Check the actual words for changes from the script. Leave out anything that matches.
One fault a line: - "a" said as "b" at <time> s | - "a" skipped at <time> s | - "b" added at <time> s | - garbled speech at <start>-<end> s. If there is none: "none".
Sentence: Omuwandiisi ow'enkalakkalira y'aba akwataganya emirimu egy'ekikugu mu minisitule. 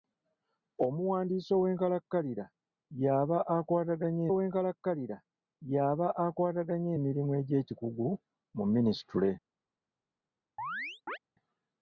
- "ow'enkalakkalira y'aba akwataganya" added at 4.3 s